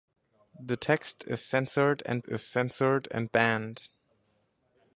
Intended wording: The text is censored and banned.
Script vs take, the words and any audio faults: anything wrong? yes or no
yes